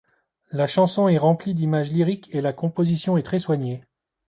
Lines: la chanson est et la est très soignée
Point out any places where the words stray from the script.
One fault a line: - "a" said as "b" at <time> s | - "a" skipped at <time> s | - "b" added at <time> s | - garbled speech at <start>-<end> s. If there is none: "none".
- "remplie d'images lyriques" added at 1.2 s
- "composition" added at 2.5 s